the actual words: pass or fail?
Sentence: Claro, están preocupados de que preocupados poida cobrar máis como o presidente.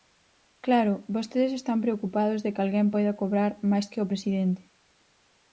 fail